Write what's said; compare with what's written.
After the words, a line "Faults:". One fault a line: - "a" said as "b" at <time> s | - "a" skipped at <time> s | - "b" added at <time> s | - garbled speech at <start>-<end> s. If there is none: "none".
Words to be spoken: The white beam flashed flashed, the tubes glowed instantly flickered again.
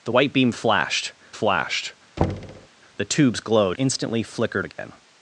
The white beam flashed flashed, the tubes glowed instantly flickered again.
Faults:
none